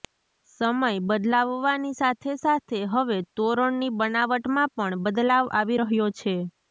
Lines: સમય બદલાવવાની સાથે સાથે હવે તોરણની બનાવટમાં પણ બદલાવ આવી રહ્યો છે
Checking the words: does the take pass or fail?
pass